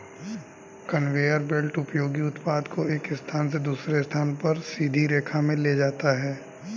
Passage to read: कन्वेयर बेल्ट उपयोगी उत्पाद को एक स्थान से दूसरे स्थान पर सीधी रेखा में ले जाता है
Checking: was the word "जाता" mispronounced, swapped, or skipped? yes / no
no